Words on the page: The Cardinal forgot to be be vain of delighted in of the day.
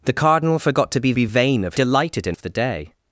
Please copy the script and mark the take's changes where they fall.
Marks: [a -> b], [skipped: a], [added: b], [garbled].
The Cardinal forgot to be be vain of delighted in of the day.